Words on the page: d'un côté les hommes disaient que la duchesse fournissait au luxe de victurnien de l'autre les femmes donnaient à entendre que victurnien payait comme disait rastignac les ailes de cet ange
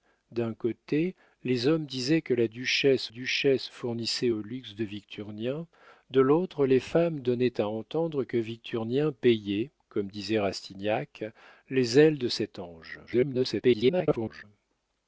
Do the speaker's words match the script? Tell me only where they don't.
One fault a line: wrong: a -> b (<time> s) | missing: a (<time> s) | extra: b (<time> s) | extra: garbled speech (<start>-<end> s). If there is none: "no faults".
extra: duchesse (3.1 s)
extra: garbled speech (13.1-14.4 s)